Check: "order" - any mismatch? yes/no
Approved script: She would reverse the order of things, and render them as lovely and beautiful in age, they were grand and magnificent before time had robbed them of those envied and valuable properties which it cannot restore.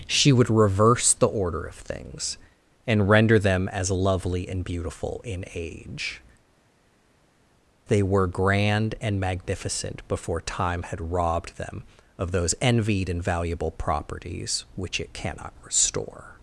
no